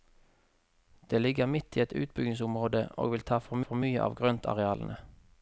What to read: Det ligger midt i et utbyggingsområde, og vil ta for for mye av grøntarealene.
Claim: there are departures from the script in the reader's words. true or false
false